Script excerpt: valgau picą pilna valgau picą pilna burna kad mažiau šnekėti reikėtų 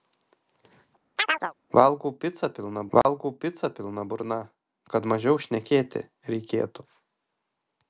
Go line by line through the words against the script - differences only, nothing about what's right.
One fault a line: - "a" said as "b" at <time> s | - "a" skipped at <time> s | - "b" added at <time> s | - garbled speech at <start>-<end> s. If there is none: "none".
none